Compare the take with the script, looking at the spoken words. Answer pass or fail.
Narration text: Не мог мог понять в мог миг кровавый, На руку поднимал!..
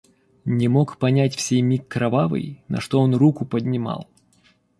fail